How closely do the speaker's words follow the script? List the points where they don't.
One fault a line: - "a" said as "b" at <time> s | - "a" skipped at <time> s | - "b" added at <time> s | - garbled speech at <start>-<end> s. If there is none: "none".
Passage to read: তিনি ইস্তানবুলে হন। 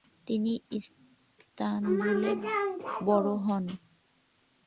- "বড়" added at 3.1 s